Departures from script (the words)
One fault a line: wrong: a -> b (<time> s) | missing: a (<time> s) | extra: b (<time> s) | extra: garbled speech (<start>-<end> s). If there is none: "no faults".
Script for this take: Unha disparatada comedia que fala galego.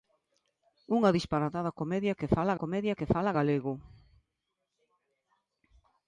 extra: comedia que fala (2.6 s)